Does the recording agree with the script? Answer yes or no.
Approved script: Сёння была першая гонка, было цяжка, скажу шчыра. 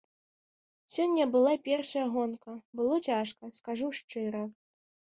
yes